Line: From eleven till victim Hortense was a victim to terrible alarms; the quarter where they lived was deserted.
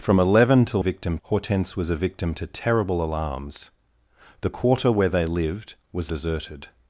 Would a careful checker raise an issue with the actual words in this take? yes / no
no